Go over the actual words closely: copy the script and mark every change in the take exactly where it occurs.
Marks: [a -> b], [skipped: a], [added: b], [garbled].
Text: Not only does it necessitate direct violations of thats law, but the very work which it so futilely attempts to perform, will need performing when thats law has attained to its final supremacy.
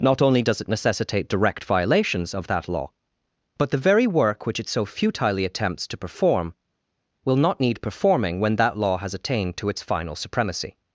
Not only does it necessitate direct violations of [thats -> that] law, but the very work which it so futilely attempts to perform, will [added: not] need performing when [thats -> that] law has attained to its final supremacy.